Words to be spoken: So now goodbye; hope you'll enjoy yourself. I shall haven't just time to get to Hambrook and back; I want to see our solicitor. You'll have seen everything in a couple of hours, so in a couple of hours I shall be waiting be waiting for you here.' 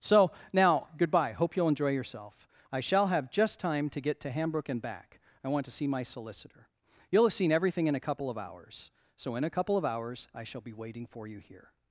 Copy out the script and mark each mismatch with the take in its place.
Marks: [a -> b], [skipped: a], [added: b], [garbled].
So now goodbye; hope you'll enjoy yourself. I shall [haven't -> have] just time to get to Hambrook and back; I want to see [our -> my] solicitor. You'll have seen everything in a couple of hours, so in a couple of hours I shall be waiting [skipped: be waiting] for you here.'